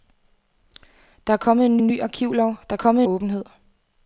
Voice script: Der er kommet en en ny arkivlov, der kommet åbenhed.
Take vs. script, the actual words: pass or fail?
pass